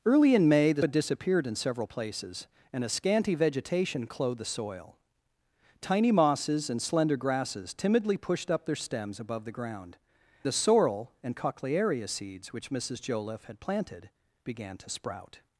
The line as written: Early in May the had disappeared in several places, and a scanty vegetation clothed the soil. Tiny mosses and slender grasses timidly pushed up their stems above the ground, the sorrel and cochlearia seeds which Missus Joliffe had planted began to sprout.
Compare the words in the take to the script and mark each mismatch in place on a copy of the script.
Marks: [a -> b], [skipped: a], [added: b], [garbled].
Early in May the had disappeared in several places, and a scanty vegetation clothed the soil. Tiny mosses and slender grasses timidly pushed up their stems above the ground, the sorrel and cochlearia seeds which Missus Joliffe had planted began to sprout.